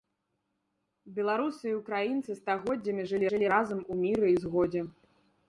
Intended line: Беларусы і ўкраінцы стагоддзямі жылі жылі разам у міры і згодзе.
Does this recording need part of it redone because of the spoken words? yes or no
no